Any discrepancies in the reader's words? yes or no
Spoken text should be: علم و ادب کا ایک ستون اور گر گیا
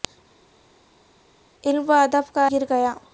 yes